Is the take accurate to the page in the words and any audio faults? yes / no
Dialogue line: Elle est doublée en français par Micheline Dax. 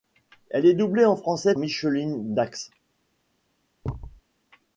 no